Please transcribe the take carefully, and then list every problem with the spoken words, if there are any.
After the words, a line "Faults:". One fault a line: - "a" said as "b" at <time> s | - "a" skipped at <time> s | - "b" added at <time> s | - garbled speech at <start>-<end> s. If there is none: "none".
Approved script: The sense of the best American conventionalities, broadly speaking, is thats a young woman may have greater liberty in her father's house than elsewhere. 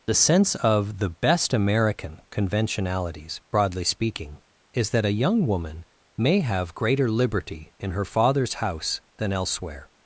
The sense of the best American conventionalities, broadly speaking, is that a young woman may have greater liberty in her father's house than elsewhere.
Faults:
- "thats" said as "that" at 4.9 s